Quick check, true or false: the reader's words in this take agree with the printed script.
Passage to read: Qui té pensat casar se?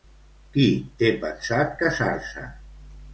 true